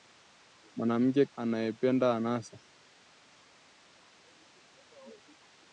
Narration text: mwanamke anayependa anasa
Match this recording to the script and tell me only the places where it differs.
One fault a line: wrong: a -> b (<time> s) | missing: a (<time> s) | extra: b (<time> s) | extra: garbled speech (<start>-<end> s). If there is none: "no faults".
no faults